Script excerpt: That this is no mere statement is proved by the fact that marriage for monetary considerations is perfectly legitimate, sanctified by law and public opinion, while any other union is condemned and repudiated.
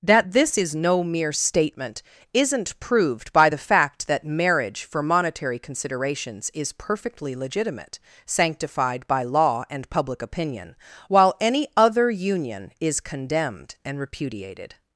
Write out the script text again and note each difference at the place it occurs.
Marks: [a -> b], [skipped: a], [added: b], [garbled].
That this is no mere statement [is -> isn't] proved by the fact that marriage for monetary considerations is perfectly legitimate, sanctified by law and public opinion, while any other union is condemned and repudiated.